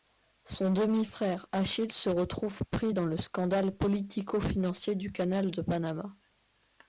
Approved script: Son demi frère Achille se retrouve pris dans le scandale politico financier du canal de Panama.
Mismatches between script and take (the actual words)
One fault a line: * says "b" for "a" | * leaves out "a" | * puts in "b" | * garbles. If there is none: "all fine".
all fine